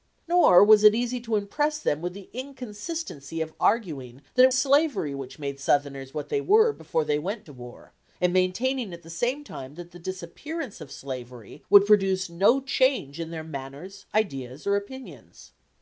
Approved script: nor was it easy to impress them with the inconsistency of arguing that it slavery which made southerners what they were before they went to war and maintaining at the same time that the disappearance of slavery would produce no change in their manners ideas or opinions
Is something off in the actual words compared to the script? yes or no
no